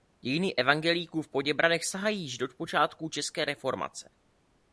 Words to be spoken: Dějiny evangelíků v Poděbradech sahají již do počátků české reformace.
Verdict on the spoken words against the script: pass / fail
pass